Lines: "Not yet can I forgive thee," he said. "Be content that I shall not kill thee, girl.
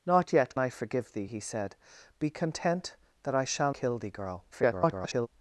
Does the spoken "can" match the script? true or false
false